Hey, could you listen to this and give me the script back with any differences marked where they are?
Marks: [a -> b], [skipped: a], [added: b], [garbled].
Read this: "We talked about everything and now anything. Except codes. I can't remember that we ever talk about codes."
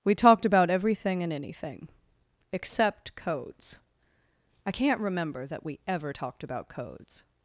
"We talked about everything and [skipped: now] anything. Except codes. I can't remember that we ever [talk -> talked] about codes."